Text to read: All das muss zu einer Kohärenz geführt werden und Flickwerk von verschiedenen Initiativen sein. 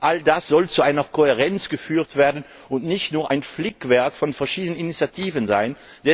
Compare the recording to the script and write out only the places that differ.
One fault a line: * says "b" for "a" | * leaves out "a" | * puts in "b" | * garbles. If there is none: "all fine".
* says "soll" for "muss"
* puts in "nicht nur ein"